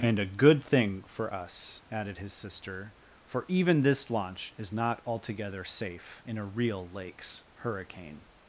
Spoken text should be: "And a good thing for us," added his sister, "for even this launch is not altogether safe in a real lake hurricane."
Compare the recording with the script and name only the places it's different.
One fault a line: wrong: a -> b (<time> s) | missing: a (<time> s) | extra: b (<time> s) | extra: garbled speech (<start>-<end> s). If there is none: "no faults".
wrong: lake -> lakes (6.9 s)